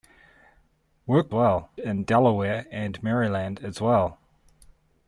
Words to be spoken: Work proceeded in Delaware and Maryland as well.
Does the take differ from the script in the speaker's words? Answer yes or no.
yes